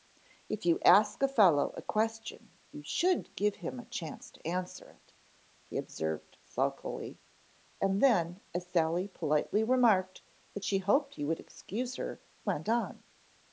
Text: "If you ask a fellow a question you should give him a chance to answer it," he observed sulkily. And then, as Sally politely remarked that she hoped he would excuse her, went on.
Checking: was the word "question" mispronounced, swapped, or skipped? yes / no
no